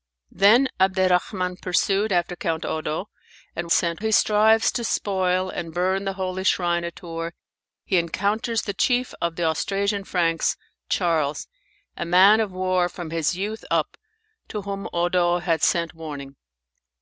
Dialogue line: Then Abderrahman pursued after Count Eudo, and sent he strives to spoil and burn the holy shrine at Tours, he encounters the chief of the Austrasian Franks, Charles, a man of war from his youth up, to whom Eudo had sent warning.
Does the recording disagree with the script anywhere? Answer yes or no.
no